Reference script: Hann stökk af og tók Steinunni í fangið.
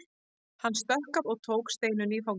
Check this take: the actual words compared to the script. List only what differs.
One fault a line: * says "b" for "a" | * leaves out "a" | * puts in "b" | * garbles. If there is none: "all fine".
all fine